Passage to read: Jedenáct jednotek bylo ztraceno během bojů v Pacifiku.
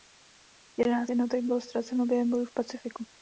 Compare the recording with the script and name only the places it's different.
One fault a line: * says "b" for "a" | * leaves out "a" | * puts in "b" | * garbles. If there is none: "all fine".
all fine